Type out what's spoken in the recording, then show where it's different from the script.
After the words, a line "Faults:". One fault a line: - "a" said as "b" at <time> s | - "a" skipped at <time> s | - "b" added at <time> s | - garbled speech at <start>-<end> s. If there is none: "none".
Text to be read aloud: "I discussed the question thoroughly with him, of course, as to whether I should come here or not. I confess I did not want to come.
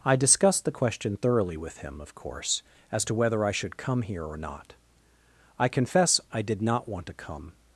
"I discussed the question thoroughly with him, of course, as to whether I should come here or not. I confess I did not want to come.
Faults:
none